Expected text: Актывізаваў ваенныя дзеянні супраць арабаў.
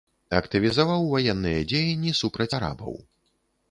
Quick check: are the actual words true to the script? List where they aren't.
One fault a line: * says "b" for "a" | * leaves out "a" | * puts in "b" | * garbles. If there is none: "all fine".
all fine